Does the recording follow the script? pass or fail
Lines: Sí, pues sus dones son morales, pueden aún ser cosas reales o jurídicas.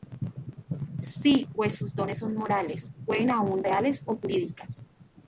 fail